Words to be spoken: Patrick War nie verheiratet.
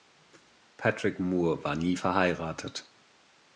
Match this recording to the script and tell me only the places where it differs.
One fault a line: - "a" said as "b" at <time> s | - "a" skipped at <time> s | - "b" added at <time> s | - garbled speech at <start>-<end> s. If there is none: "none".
- "Moore" added at 1.2 s